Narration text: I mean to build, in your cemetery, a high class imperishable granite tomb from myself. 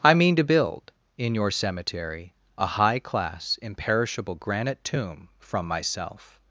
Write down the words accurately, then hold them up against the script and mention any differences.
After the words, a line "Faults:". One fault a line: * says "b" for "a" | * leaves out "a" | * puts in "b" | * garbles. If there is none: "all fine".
I mean to build, in your cemetery, a high class imperishable granite tomb from myself.
Faults:
all fine